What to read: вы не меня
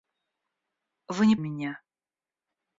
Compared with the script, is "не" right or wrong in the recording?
right